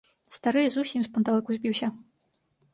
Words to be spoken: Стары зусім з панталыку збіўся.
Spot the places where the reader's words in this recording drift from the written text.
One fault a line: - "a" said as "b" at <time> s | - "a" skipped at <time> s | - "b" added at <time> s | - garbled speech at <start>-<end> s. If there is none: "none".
none